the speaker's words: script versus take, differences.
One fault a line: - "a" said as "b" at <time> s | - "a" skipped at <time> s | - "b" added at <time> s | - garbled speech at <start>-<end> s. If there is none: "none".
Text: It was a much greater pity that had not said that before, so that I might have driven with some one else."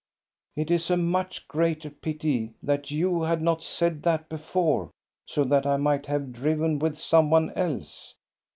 - "was" said as "is" at 0.7 s
- "you" added at 2.9 s